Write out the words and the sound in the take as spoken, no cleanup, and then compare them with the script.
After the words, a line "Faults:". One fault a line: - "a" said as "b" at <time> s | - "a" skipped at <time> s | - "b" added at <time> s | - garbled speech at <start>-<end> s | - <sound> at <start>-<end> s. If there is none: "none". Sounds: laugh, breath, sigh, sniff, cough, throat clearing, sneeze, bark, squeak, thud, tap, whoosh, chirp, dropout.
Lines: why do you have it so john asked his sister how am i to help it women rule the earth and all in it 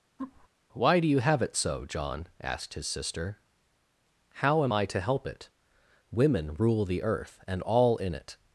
why do you have it so john asked his sister how am i to help it women rule the earth and all in it
Faults:
- laugh at 0.2-0.5 s